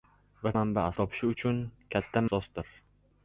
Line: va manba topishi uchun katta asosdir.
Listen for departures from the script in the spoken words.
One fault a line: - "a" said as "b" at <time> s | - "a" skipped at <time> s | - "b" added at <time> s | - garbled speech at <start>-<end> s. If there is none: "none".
none